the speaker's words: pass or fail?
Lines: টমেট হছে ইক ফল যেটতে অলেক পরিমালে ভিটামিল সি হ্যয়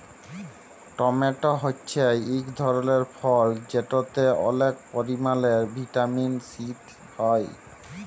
fail